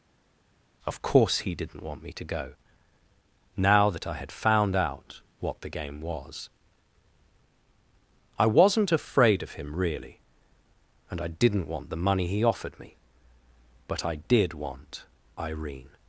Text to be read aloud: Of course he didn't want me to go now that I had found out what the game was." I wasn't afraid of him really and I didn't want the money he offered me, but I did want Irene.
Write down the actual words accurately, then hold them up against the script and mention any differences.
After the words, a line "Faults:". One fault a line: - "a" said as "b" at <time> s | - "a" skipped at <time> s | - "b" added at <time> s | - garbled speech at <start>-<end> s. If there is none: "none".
Of course he didn't want me to go now that I had found out what the game was." I wasn't afraid of him really and I didn't want the money he offered me, but I did want Irene.
Faults:
none